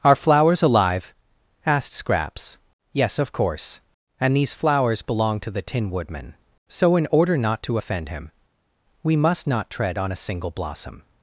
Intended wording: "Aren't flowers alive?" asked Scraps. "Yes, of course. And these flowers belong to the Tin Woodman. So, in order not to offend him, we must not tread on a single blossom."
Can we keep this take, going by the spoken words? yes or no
no